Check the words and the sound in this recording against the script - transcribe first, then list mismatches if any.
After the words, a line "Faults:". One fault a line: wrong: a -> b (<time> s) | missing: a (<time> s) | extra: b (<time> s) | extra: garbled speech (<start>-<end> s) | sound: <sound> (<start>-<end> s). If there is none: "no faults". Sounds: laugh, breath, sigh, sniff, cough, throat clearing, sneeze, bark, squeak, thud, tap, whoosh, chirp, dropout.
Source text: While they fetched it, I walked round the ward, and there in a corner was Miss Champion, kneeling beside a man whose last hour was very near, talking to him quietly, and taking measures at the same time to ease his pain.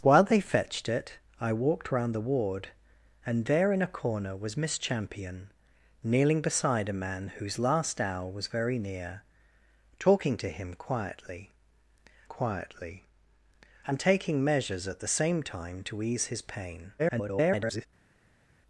While they fetched it, I walked round the ward, and there in a corner was Miss Champion, kneeling beside a man whose last hour was very near, talking to him quietly quietly, and taking measures at the same time to ease his pain. [garbled]
Faults:
extra: quietly (12.2 s)
extra: garbled speech (17.0-17.9 s)